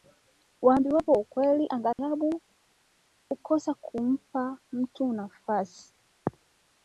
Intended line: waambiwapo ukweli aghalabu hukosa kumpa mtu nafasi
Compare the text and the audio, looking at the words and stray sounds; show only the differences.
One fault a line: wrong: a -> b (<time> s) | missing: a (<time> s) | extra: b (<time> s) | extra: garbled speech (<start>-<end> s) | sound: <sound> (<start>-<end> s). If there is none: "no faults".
sound: dropout (1.9-2.0 s)